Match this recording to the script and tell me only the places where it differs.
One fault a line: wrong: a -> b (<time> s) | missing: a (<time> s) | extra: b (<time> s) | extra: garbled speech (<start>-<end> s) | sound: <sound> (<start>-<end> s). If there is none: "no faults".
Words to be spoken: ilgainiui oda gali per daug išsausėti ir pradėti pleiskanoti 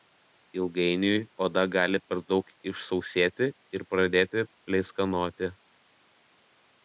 no faults